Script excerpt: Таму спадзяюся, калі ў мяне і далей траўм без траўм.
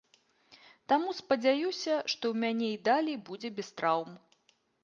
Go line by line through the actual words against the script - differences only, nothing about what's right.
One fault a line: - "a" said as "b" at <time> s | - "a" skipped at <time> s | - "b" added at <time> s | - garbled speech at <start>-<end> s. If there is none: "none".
- "калі" said as "што" at 2.1 s
- "траўм" said as "будзе" at 3.3 s